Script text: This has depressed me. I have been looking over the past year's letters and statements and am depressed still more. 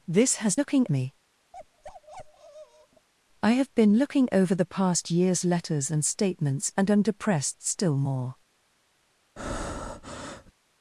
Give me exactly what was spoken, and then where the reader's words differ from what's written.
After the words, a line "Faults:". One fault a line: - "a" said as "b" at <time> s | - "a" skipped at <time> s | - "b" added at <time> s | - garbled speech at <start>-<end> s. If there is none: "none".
This has looking me. I have been looking over the past year's letters and statements and am depressed still more.
Faults:
- "depressed" said as "looking" at 0.6 s